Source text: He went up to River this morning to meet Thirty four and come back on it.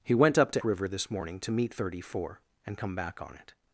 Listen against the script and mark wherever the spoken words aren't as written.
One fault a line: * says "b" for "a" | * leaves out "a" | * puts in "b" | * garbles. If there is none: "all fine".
all fine